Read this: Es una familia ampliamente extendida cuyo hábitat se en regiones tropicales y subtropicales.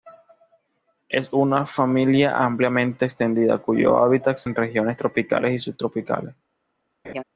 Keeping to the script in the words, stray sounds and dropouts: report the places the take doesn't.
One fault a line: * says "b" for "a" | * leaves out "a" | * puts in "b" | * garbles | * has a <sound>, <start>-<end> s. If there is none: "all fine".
* has a laugh, 7.0-7.2 s